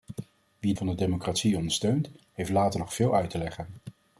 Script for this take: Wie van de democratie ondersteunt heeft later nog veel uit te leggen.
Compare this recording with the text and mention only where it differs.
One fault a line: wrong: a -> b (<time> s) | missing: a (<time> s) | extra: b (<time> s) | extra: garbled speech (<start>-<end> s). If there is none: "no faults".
no faults